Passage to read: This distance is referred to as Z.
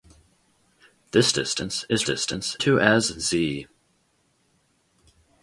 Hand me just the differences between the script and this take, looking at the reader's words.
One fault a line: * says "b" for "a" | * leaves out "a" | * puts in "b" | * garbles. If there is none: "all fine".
* says "distance" for "referred"